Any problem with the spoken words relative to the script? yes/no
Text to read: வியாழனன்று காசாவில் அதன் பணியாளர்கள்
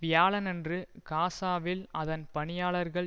no